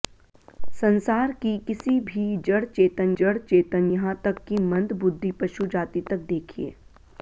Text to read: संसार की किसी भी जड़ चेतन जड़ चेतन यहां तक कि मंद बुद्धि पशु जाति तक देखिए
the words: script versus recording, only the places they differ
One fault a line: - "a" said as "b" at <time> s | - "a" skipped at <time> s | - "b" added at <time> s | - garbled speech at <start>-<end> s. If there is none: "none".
none